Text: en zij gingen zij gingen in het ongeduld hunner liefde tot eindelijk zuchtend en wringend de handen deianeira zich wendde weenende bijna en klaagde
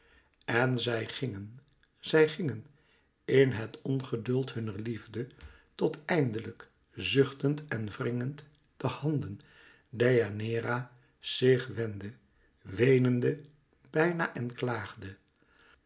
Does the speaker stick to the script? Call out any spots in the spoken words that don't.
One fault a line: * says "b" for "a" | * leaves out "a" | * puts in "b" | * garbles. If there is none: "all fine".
all fine